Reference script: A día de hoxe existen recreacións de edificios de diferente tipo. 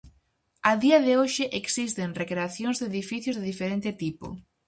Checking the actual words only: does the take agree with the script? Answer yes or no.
yes